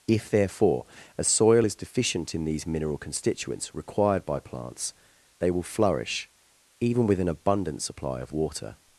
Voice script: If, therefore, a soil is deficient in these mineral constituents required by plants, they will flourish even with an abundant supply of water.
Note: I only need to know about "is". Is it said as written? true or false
true